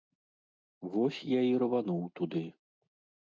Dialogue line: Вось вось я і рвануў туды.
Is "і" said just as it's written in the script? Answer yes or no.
yes